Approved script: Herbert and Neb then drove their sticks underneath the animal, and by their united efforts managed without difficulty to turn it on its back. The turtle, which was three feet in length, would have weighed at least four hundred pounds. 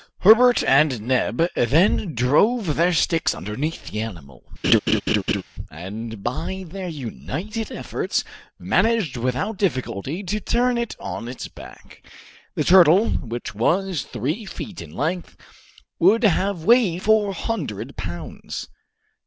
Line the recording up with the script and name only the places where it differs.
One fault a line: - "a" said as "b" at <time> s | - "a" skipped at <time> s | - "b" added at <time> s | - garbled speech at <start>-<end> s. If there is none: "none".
- "at least" skipped at 17.0 s